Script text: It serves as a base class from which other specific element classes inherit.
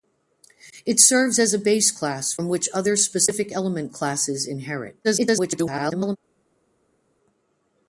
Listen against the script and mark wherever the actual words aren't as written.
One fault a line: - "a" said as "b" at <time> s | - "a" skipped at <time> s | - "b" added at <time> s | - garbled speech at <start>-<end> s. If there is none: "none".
- garbled speech at 5.0-6.2 s